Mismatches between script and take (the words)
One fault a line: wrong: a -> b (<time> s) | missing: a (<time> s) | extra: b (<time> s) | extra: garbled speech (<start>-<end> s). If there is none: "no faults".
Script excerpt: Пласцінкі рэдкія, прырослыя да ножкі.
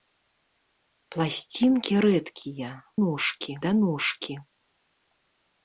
wrong: прырослыя -> ножкі (3.0 s)